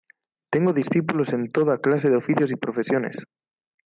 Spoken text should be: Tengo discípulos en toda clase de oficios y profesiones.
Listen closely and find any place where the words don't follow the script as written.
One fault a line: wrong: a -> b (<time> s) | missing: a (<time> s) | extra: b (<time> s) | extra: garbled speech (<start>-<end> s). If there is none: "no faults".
no faults